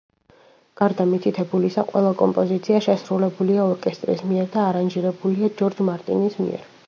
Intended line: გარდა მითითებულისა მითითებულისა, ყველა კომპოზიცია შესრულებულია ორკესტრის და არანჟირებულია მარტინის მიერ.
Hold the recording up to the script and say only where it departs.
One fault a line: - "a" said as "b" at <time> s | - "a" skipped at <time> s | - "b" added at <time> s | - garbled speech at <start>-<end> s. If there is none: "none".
- "მითითებულისა" skipped at 1.8 s
- "მიერ" added at 4.3 s
- "ჯორჯ" added at 5.6 s